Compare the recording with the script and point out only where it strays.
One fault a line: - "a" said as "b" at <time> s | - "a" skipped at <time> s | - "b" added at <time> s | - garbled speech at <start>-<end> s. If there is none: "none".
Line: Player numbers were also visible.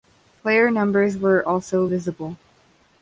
none